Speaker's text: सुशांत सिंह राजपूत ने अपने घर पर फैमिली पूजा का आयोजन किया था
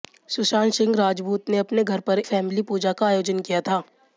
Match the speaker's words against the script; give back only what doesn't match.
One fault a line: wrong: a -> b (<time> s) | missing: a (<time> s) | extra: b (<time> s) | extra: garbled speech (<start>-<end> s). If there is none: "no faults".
no faults